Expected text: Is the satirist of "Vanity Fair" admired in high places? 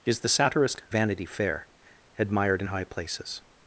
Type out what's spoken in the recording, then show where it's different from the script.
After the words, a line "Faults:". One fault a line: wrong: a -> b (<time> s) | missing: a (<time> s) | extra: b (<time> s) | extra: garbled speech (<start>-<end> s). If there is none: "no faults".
Is the satirist "Vanity Fair" admired in high places?
Faults:
missing: of (0.8 s)